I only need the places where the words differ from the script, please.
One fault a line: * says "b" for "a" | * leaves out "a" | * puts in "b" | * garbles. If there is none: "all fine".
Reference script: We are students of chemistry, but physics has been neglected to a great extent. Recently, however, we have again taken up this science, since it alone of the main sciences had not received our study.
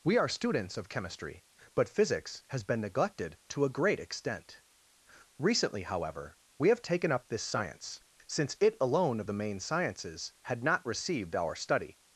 * leaves out "again"